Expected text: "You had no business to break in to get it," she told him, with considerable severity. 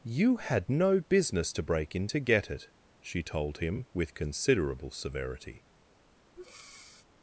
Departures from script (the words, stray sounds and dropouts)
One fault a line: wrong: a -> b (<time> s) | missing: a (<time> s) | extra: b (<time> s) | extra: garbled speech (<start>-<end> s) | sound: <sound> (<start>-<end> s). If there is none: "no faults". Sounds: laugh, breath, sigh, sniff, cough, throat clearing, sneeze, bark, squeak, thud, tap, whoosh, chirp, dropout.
sound: breath (6.4-7.1 s)